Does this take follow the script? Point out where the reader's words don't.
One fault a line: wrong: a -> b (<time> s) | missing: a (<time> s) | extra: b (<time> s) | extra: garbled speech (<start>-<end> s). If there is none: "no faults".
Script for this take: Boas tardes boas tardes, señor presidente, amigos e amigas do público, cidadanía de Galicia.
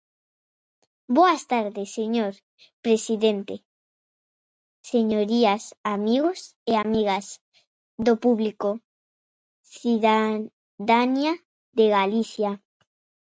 missing: boas tardes (1.9 s)
extra: señorías (4.9 s)